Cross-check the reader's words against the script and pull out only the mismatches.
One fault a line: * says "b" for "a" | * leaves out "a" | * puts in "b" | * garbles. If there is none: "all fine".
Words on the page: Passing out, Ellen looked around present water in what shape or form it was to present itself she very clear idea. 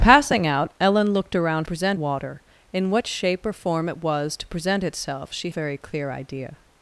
all fine